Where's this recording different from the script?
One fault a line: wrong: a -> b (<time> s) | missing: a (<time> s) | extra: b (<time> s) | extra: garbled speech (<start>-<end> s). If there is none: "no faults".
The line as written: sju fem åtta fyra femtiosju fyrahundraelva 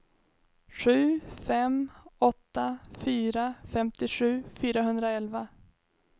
no faults